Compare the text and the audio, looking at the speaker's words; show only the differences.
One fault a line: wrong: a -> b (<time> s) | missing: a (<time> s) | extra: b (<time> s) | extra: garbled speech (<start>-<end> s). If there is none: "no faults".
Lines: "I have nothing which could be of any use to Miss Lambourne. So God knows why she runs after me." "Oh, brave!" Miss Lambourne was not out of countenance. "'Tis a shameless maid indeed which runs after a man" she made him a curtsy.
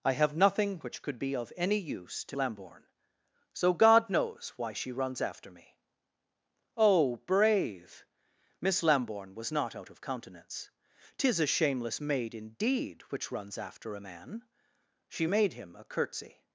missing: Miss (2.4 s)